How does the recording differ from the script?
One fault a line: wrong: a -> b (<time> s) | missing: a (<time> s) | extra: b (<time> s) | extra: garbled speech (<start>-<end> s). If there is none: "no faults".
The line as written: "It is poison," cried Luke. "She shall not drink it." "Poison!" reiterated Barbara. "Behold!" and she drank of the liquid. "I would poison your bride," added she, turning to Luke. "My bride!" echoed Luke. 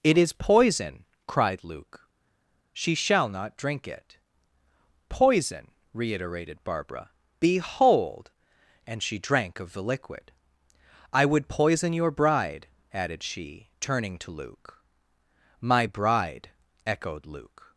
no faults